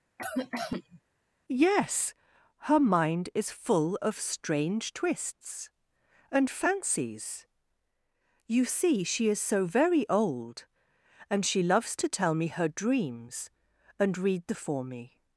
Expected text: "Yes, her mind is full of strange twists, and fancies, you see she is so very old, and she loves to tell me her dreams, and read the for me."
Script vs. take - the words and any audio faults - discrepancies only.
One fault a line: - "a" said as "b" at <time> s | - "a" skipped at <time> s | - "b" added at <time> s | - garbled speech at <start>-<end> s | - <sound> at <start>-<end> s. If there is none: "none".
- cough at 0.2-1.0 s